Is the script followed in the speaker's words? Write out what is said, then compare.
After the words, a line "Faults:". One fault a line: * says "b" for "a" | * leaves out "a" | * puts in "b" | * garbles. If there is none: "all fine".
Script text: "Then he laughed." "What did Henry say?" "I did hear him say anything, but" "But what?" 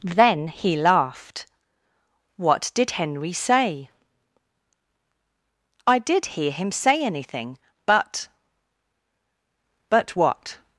"Then he laughed." "What did Henry say?" "I did hear him say anything, but" "But what?"
Faults:
all fine